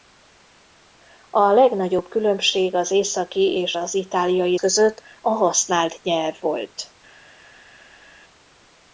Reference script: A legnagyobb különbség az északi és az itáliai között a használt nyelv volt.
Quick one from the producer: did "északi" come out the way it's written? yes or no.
yes